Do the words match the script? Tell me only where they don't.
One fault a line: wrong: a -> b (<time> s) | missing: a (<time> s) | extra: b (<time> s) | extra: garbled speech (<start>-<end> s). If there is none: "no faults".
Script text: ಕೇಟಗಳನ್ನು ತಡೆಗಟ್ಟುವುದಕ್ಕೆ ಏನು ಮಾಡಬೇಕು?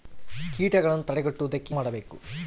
missing: ಏನು (1.8 s)